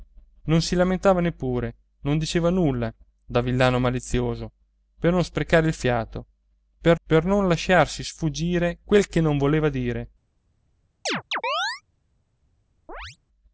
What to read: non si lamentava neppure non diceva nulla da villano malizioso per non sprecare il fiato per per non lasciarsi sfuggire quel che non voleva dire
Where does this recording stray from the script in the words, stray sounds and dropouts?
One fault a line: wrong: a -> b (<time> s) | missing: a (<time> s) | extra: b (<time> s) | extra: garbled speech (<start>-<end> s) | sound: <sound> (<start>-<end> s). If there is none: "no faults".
sound: chirp (11.1-11.8 s)
sound: chirp (12.9-13.2 s)